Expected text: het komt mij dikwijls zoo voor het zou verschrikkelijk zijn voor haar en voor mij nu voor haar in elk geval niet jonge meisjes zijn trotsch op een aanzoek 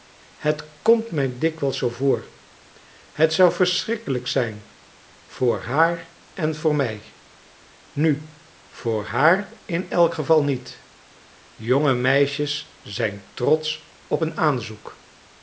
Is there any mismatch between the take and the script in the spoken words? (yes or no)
no